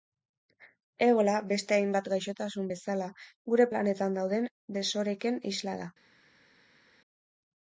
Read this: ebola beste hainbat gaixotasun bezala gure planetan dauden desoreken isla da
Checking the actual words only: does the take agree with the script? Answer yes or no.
yes